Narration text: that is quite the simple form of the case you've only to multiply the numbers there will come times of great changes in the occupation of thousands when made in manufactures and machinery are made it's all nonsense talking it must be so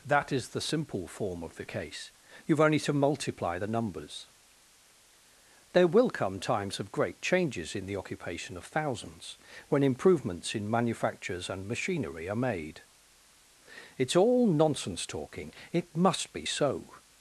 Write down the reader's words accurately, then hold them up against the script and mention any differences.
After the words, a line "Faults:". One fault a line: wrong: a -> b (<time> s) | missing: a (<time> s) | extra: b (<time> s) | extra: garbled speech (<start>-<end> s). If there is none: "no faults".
that is the simple form of the case you've only to multiply the numbers there will come times of great changes in the occupation of thousands when improvements in manufactures and machinery are made it's all nonsense talking it must be so
Faults:
missing: quite (0.5 s)
wrong: made -> improvements (9.8 s)